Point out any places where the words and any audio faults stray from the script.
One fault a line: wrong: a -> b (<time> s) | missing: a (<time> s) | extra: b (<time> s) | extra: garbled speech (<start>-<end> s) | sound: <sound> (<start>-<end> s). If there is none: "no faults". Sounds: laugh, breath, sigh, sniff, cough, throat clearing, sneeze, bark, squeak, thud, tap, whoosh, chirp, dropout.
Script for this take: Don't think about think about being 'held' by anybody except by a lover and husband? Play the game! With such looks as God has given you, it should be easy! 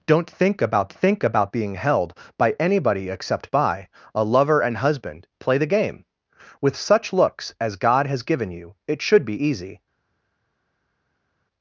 no faults